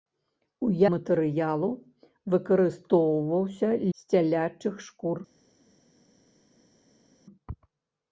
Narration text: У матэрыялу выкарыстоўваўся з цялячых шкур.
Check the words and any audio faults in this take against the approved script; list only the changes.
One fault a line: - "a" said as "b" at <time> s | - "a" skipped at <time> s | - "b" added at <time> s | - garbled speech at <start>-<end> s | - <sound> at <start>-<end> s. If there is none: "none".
none